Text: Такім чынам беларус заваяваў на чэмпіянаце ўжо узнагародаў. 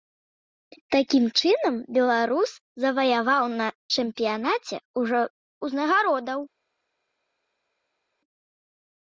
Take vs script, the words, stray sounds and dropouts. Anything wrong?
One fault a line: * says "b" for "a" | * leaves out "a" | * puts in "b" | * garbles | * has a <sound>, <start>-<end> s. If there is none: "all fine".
all fine